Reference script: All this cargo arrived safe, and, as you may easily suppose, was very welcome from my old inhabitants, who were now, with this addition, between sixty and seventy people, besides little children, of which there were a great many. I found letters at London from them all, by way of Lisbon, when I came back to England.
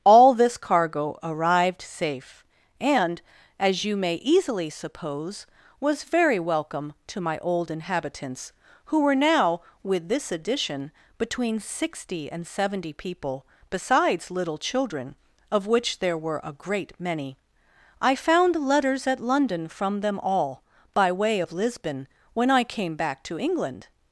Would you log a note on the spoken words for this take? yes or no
yes